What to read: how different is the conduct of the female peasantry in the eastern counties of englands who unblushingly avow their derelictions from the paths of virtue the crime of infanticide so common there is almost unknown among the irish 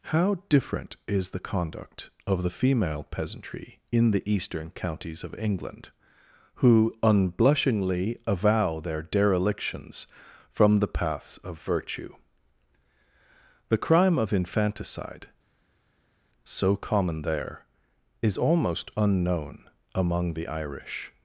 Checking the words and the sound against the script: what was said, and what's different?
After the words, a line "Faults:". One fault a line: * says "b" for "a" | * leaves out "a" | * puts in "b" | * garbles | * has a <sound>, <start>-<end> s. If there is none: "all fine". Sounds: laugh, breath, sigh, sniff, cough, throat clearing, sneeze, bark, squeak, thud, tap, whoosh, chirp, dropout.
how different is the conduct of the female peasantry in the eastern counties of england who unblushingly avow their derelictions from the paths of virtue the crime of infanticide so common there is almost unknown among the irish
Faults:
* says "england" for "englands"